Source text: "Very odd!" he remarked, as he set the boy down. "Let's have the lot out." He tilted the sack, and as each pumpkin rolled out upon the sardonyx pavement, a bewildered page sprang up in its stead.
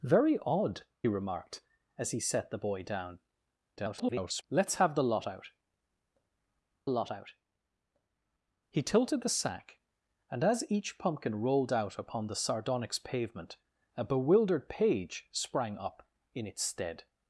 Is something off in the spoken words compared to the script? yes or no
yes